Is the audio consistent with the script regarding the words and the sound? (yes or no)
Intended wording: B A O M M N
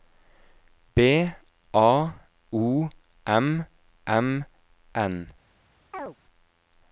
no